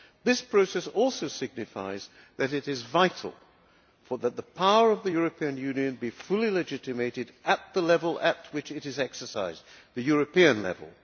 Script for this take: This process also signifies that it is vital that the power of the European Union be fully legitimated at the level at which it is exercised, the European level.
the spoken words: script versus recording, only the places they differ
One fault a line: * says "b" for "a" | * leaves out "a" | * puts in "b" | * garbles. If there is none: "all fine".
all fine